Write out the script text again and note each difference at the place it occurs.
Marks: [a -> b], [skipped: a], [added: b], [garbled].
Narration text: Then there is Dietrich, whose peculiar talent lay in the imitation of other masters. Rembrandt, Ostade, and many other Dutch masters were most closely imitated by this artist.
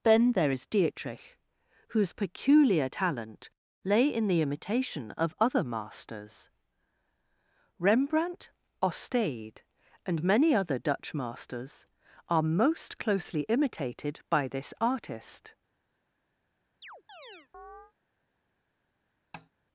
Then there is Dietrich, whose peculiar talent lay in the imitation of other masters. Rembrandt, Ostade, and many other Dutch masters [were -> are] most closely imitated by this artist.